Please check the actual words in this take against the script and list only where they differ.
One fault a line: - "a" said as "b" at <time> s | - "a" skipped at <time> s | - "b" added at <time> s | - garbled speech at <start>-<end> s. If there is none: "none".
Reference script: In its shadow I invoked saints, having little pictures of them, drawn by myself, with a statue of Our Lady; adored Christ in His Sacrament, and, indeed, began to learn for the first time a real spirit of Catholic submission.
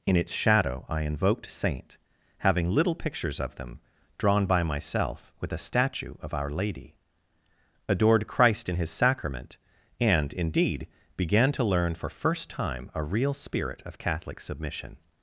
- "saints" said as "saint" at 1.5 s
- "the" skipped at 12.1 s